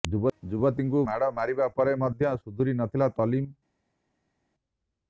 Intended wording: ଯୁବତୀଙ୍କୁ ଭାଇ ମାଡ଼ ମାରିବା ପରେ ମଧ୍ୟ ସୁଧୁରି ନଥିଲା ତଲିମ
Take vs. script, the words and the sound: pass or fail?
fail